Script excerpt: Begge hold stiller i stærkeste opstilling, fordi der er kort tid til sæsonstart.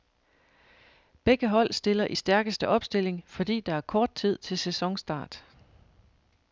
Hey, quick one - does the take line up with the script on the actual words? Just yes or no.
yes